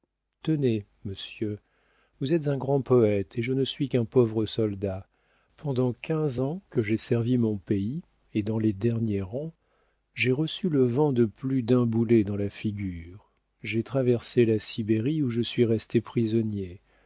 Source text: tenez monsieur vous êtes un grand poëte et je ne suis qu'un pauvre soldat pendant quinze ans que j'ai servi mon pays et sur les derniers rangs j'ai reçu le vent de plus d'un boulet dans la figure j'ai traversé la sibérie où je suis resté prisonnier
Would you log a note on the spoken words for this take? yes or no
yes